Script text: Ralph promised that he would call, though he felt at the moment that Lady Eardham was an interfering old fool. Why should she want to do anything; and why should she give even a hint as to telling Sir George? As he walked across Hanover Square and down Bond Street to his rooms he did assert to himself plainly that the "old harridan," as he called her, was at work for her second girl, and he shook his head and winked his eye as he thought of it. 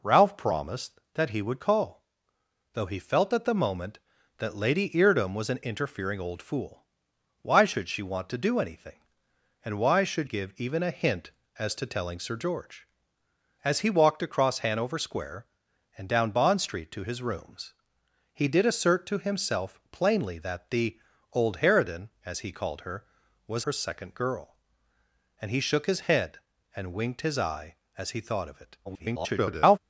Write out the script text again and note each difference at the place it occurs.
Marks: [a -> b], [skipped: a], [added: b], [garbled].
Ralph promised that he would call, though he felt at the moment that Lady Eardham was an interfering old fool. Why should she want to do anything; and why should [skipped: she] give even a hint as to telling Sir George? As he walked across Hanover Square and down Bond Street to his rooms he did assert to himself plainly that the "old harridan," as he called her, was [skipped: at work for] her second girl, and he shook his head and winked his eye as he thought of it. [garbled]